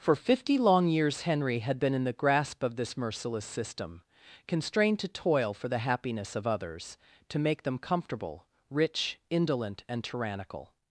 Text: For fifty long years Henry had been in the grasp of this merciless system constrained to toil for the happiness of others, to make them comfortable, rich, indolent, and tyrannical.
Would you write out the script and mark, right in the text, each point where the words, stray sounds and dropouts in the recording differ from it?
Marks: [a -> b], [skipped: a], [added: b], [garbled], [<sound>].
For fifty long years Henry had been in the grasp of this merciless system constrained to toil for the happiness of others, to make them comfortable, rich, indolent, and tyrannical.